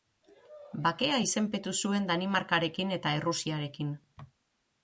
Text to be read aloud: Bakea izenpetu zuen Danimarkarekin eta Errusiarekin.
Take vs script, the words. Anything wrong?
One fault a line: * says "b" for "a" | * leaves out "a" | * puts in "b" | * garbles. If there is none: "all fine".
all fine